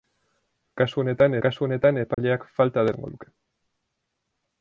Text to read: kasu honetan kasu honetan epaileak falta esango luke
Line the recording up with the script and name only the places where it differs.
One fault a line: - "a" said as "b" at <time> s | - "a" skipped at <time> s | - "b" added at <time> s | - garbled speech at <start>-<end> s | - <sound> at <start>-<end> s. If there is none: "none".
- dropout at 2.1-2.2 s